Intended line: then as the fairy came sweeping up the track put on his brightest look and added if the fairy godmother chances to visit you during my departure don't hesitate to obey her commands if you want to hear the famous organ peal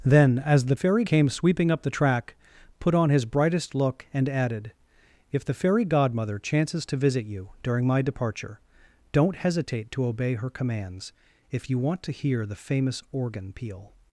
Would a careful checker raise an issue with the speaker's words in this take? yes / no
no